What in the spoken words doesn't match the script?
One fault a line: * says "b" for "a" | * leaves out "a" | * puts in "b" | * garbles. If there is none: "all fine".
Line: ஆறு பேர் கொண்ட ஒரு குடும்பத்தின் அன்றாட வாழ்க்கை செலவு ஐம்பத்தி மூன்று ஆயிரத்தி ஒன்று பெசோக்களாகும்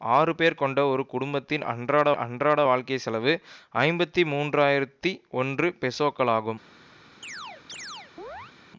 * puts in "அன்றாட"